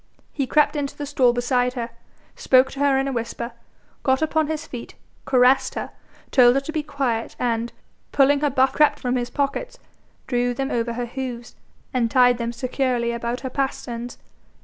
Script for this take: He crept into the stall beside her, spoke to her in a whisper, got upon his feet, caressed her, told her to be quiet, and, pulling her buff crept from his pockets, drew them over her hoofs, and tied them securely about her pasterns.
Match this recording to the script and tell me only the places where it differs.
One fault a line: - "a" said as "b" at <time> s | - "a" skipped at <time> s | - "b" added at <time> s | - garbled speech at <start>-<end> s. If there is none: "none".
none